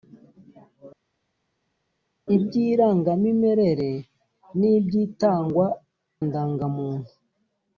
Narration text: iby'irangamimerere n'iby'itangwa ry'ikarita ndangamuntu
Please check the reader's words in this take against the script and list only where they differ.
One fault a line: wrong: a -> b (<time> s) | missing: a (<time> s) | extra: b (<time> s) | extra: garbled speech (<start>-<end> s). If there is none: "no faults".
missing: ry'ikarita (5.7 s)